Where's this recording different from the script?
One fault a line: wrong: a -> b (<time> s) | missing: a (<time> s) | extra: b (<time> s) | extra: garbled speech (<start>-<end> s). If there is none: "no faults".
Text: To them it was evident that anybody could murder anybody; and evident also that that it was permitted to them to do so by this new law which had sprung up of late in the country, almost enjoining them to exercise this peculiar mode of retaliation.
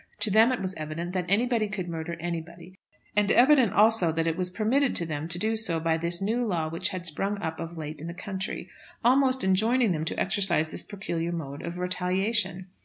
missing: that (4.2 s)